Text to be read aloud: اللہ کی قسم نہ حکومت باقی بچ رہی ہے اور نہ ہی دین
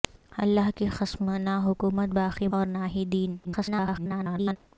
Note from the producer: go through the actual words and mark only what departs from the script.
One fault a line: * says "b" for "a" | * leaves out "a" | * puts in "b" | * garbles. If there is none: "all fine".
* leaves out "بچ رہی ہے"
* garbles